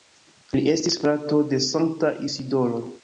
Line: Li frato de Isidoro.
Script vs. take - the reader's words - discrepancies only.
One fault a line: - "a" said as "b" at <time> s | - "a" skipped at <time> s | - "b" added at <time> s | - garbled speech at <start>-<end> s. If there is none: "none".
- "estis" added at 0.7 s
- "Sankta" added at 1.7 s